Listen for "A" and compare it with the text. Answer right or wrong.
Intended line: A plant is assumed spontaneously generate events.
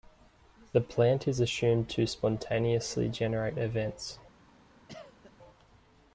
wrong